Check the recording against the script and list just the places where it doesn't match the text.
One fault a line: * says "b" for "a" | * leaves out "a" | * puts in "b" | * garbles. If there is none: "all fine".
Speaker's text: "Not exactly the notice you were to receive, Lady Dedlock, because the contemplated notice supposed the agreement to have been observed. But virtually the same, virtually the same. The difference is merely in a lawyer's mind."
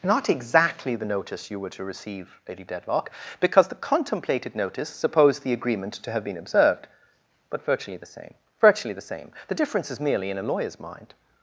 all fine